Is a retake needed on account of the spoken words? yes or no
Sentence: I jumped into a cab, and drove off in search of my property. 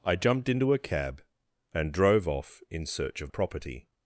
yes